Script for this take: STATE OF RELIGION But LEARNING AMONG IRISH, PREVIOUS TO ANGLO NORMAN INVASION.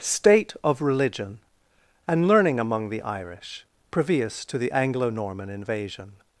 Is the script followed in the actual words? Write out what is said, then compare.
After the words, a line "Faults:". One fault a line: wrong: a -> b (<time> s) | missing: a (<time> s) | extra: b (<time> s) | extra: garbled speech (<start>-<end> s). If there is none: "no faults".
STATE OF RELIGION AND LEARNING AMONG THE IRISH, PREVIOUS TO THE ANGLO NORMAN INVASION.
Faults:
wrong: But -> AND (2.1 s)
extra: THE (2.9 s)
extra: THE (4.6 s)